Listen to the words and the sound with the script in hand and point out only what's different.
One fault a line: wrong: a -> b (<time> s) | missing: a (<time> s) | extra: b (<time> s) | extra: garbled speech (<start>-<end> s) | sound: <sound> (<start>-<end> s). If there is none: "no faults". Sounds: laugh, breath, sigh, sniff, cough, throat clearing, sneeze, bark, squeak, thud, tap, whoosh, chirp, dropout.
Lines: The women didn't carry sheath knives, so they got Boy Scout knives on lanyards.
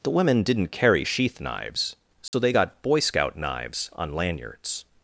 sound: dropout (2.3-2.3 s)